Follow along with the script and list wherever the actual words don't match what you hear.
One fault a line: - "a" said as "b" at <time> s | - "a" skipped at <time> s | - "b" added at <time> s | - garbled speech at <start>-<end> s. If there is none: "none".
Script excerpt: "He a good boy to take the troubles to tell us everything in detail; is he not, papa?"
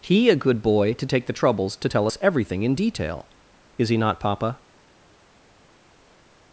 none